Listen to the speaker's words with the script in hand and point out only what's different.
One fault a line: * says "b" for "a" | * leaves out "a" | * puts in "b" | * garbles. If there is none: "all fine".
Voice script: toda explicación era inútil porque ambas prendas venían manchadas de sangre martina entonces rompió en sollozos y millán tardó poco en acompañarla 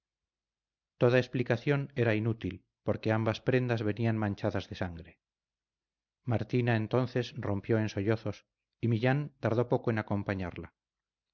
all fine